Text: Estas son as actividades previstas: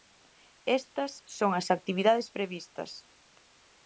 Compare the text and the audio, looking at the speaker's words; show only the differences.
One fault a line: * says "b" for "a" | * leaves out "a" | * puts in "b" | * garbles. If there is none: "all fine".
all fine